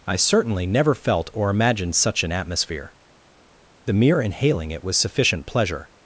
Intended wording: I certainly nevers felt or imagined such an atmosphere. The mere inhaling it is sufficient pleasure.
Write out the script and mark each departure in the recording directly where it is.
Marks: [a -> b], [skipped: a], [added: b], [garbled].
I certainly [nevers -> never] felt or imagined such an atmosphere. The mere inhaling it [is -> was] sufficient pleasure.